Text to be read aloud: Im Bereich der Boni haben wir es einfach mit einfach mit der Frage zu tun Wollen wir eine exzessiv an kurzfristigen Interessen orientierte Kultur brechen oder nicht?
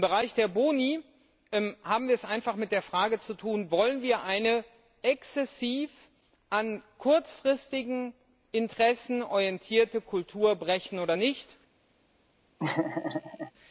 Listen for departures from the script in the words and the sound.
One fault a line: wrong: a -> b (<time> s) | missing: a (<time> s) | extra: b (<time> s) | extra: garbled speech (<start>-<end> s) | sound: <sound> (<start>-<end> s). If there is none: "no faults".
missing: einfach mit (2.7 s)
sound: laugh (12.6-13.5 s)